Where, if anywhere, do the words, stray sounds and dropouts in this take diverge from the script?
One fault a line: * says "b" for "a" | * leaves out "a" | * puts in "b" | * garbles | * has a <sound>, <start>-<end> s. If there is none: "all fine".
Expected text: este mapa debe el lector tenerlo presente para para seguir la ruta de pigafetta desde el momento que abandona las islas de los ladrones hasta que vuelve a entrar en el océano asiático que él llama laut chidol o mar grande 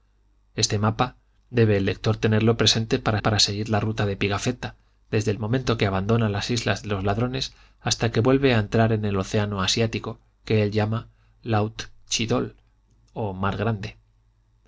all fine